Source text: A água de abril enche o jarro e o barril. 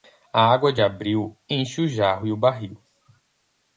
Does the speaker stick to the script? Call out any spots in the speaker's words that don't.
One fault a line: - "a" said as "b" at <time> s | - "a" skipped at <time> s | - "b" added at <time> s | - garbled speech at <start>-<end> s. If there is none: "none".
none